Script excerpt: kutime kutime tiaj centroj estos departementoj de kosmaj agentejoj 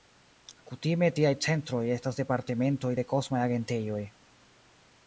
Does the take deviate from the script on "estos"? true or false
true